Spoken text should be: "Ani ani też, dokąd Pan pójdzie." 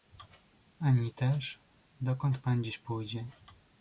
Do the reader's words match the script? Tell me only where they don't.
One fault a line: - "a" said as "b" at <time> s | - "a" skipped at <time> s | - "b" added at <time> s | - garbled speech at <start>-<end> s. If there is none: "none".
- "ani" skipped at 1.1 s
- "dziś" added at 2.6 s